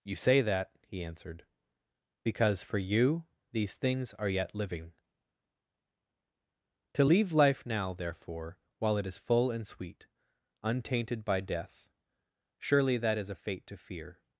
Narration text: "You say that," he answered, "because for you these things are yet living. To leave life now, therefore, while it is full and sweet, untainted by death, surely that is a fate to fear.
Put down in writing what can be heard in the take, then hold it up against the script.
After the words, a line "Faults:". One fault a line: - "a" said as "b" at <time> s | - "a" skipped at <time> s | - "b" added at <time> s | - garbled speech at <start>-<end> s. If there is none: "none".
"You say that," he answered, "because for you these things are yet living. To leave life now, therefore, while it is full and sweet, untainted by death, surely that is a fate to fear.
Faults:
none